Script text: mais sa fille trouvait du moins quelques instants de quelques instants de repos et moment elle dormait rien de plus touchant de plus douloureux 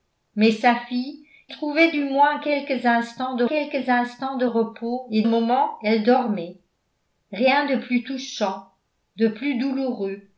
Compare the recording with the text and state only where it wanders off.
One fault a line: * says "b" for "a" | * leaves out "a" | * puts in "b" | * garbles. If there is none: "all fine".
all fine